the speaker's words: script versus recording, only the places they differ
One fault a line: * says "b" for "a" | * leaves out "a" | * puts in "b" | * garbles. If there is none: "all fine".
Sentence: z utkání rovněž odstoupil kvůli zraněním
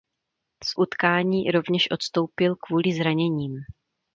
all fine